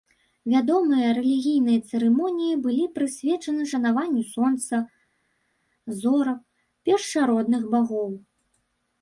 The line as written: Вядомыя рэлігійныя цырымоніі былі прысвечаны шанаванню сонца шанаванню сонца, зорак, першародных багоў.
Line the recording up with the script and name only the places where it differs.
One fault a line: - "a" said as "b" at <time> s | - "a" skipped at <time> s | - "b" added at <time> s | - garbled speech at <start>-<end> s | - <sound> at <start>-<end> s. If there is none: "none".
- "шанаванню сонца" skipped at 4.7 s